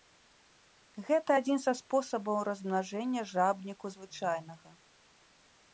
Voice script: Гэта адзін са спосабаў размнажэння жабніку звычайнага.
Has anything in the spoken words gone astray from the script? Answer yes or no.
no